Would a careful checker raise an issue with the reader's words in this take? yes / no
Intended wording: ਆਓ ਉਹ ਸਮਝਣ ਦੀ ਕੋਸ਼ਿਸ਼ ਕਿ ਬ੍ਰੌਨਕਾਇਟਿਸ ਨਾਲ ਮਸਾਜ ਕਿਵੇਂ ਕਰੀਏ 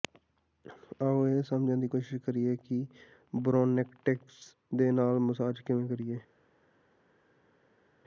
yes